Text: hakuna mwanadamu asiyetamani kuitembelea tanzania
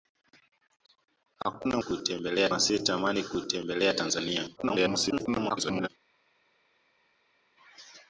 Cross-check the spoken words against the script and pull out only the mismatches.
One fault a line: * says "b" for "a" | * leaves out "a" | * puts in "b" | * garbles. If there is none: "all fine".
* says "kuitembelea" for "mwanadamu"
* garbles